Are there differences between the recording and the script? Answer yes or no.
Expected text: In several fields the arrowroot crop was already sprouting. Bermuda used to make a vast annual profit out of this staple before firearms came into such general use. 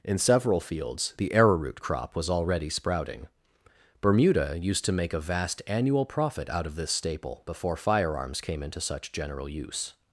no